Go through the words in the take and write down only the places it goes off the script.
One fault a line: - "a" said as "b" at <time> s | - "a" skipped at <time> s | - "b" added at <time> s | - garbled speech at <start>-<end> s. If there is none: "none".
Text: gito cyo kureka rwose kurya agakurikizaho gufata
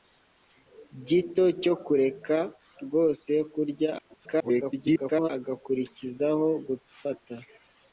- garbled speech at 4.0-5.3 s